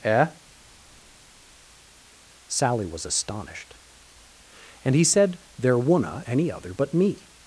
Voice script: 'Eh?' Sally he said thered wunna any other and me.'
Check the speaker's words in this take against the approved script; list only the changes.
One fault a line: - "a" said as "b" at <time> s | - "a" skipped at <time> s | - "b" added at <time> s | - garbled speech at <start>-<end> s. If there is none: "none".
- "was astonished And" added at 2.9 s
- "thered" said as "there" at 5.6 s
- "and" said as "but" at 6.7 s